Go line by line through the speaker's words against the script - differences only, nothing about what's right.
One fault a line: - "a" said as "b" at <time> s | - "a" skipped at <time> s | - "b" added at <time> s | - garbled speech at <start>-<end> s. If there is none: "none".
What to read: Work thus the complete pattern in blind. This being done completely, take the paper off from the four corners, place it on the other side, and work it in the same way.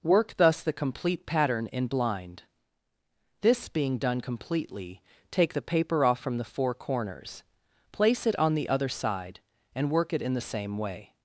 none